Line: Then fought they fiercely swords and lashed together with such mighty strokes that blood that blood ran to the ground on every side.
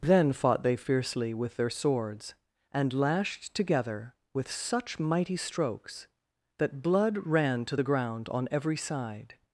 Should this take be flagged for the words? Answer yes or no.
yes